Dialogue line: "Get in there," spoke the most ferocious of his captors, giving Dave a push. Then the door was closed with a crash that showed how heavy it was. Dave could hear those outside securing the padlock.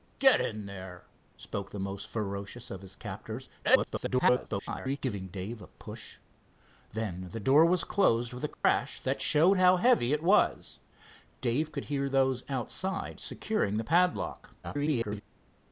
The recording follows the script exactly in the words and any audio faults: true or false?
false